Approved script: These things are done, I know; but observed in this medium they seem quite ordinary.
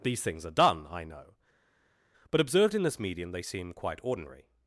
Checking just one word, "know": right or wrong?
right